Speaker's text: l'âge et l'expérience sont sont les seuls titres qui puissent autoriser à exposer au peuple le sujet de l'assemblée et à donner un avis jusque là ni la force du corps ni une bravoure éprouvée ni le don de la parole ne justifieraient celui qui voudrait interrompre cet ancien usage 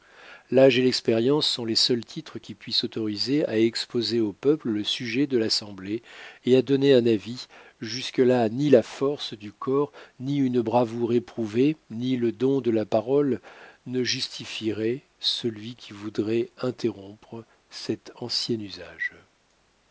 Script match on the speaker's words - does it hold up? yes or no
no